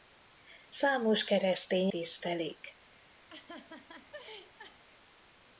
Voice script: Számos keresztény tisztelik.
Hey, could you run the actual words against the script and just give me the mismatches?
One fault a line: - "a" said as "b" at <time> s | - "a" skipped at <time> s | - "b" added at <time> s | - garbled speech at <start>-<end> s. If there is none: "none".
none